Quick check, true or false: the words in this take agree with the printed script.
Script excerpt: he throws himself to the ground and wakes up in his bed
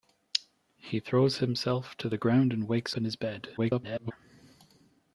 false